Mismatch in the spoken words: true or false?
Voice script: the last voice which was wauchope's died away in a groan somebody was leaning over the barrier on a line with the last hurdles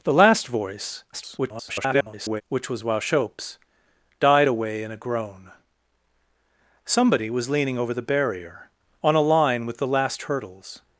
true